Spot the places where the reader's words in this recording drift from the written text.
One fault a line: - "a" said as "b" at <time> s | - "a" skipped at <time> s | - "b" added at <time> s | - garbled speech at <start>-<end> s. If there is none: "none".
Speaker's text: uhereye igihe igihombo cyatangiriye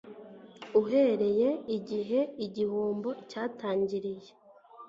none